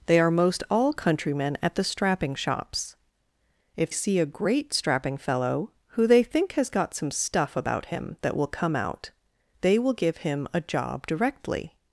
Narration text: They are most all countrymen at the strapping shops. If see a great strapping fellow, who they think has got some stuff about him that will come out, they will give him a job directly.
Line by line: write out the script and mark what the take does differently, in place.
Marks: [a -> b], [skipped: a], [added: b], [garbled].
They are most all countrymen at the strapping shops. If see a great strapping fellow, who they think has got some stuff about him that will come out, they will give him a job directly.